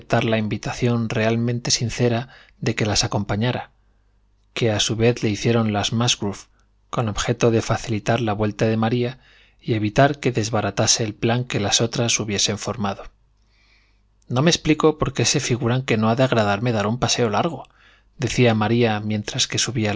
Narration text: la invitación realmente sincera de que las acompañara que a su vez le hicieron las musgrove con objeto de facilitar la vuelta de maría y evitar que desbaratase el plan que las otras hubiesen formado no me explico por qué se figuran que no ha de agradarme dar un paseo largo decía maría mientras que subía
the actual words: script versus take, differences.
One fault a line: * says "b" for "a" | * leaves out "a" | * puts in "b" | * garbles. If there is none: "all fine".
all fine